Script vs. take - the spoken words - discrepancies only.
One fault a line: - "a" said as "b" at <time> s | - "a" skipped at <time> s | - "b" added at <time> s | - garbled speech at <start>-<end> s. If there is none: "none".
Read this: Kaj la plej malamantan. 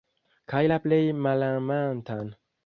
none